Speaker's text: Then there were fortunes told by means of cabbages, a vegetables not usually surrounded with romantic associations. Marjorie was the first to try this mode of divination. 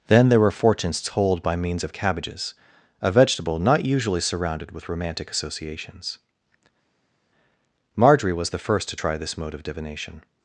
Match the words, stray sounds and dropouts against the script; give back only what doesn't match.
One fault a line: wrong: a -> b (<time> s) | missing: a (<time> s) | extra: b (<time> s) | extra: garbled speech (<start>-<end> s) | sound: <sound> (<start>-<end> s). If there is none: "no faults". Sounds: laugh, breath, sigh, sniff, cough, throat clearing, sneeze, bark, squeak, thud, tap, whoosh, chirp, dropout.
wrong: vegetables -> vegetable (3.1 s)